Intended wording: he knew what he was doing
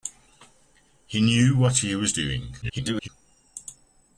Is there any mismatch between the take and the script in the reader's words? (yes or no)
yes